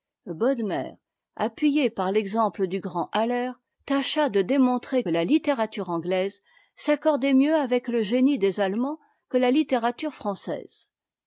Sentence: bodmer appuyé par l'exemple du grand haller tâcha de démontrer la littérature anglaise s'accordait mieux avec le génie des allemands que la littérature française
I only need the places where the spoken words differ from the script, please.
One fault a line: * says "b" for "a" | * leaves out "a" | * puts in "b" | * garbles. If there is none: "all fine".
all fine